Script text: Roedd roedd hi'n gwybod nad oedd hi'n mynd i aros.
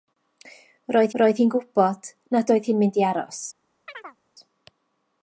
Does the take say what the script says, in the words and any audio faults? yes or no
no